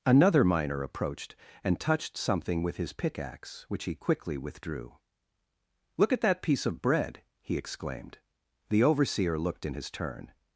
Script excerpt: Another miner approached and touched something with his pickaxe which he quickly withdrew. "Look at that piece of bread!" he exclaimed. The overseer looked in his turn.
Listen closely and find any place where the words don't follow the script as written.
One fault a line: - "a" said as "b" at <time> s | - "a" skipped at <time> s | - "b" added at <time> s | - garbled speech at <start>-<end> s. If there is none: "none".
none